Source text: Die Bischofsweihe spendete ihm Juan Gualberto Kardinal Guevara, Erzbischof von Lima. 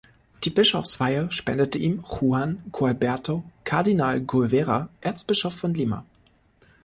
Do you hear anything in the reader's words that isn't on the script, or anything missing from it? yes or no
no